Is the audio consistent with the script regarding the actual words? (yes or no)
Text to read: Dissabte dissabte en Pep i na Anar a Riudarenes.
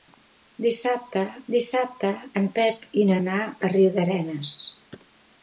yes